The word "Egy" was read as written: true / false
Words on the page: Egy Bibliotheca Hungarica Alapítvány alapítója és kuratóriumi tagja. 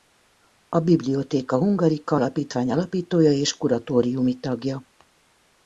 false